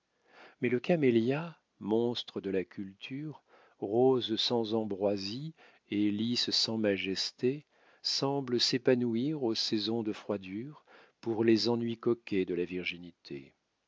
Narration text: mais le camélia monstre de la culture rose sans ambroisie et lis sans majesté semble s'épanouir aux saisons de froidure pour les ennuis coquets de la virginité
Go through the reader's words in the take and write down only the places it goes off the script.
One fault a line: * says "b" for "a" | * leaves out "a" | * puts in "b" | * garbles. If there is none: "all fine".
all fine